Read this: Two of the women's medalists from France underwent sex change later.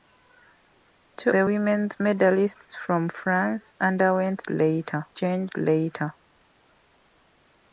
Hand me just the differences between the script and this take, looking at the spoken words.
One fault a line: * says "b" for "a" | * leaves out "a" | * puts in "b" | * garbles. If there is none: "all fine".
* leaves out "of"
* says "later" for "sex"